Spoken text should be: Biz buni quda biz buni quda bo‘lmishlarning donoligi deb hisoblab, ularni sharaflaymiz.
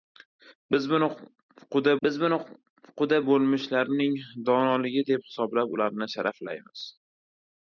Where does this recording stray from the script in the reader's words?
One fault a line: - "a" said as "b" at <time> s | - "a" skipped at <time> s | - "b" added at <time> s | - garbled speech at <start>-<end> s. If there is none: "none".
none